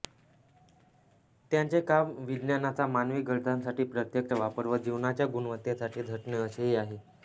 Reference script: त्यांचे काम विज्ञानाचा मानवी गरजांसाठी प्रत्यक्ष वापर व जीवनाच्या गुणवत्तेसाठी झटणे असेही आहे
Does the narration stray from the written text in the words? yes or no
no